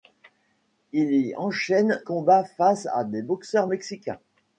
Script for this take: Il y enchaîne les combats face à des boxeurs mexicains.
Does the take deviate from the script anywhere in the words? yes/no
yes